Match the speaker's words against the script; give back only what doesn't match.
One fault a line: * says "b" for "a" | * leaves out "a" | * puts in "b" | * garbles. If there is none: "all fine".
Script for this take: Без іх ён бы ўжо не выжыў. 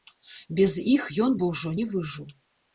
all fine